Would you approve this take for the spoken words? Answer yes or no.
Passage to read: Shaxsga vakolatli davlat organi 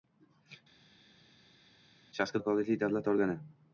yes